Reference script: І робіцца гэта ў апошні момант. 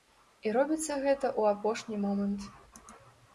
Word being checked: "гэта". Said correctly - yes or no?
yes